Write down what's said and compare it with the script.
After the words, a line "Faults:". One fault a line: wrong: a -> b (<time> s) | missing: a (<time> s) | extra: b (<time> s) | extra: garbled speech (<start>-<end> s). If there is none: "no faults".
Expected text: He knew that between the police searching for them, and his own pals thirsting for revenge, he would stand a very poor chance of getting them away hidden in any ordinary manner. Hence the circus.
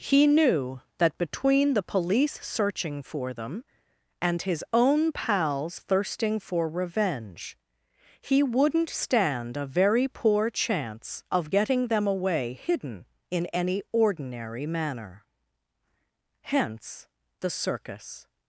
He knew that between the police searching for them, and his own pals thirsting for revenge, he wouldn't stand a very poor chance of getting them away hidden in any ordinary manner. Hence the circus.
Faults:
wrong: would -> wouldn't (8.4 s)